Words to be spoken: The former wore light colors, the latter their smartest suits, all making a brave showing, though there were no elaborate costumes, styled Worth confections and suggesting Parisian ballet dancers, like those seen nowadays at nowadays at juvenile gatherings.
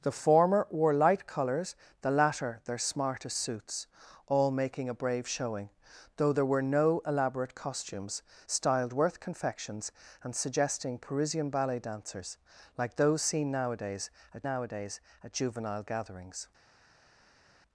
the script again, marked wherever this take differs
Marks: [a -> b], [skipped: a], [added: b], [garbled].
The former wore light colors, the latter their smartest suits, all making a brave showing, though there were no elaborate costumes, styled Worth confections and suggesting Parisian ballet dancers, like those seen nowadays at nowadays at juvenile gatherings.